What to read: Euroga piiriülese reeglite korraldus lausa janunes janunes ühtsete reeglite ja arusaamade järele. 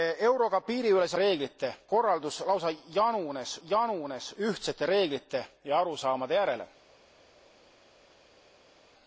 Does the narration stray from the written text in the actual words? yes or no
no